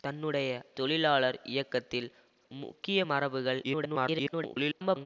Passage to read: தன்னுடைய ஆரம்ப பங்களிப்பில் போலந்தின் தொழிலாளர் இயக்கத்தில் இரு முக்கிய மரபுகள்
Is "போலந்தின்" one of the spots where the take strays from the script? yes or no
yes